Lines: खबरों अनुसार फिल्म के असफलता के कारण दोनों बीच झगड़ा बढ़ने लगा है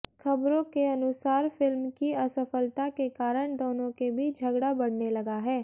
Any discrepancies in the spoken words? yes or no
yes